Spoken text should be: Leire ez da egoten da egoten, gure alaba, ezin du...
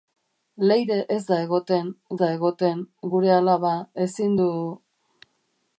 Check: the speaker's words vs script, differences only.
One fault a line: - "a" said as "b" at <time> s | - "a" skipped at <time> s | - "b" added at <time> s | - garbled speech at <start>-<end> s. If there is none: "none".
none